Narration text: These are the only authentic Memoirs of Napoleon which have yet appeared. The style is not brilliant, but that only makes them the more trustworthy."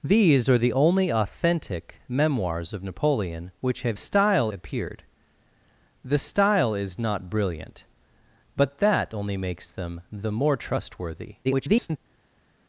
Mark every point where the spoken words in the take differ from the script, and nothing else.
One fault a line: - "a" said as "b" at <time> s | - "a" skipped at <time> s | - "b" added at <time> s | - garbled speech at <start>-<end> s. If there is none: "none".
- "yet" said as "style" at 3.9 s
- garbled speech at 11.4-12.0 s